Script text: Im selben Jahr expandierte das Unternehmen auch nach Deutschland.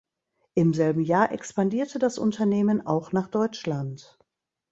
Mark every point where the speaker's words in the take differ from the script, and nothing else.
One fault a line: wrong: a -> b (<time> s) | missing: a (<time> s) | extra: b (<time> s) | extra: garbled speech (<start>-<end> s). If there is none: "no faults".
no faults